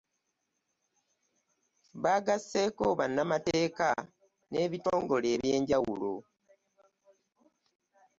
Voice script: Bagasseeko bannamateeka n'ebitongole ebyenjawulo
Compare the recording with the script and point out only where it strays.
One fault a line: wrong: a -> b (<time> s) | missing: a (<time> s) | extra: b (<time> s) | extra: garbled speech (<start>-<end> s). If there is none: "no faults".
no faults